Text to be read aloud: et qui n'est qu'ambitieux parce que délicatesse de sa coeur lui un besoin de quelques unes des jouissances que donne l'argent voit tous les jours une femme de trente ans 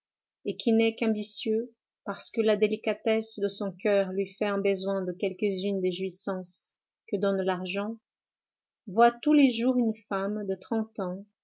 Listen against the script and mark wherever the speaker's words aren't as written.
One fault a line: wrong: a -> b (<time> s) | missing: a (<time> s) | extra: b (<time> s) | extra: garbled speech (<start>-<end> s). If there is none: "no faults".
extra: la (2.4 s)
wrong: sa -> son (3.5 s)
extra: fait (4.3 s)